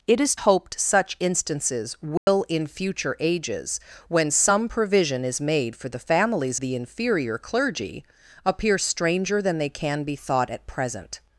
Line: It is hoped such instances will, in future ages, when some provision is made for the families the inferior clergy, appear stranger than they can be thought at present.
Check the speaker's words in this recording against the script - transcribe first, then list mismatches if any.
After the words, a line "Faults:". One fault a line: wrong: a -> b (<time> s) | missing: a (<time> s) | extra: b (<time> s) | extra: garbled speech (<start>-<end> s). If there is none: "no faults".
It is hoped such instances will, in future ages, when some provision is made for the families the inferior clergy, appear stranger than they can be thought at present.
Faults:
no faults